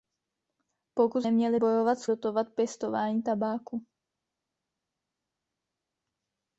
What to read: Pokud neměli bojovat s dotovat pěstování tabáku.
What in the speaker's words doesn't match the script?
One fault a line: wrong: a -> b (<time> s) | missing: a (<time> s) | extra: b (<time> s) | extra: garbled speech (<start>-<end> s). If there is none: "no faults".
no faults